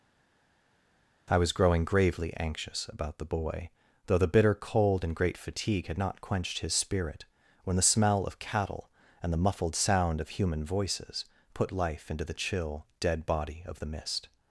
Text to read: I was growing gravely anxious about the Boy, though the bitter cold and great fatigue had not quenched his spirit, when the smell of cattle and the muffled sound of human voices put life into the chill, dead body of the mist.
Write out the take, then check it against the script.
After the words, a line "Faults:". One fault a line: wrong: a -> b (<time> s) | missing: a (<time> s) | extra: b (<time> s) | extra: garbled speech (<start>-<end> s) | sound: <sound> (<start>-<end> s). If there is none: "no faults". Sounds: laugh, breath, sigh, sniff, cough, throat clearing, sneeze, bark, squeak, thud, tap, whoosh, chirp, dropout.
I was growing gravely anxious about the Boy, though the bitter cold and great fatigue had not quenched his spirit, when the smell of cattle and the muffled sound of human voices put life into the chill, dead body of the mist.
Faults:
no faults